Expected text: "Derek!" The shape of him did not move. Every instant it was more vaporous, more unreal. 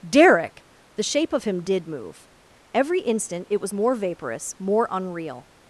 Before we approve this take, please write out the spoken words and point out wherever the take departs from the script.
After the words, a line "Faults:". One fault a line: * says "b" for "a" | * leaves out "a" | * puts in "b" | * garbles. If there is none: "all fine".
"Derek!" The shape of him did move. Every instant it was more vaporous, more unreal.
Faults:
* leaves out "not"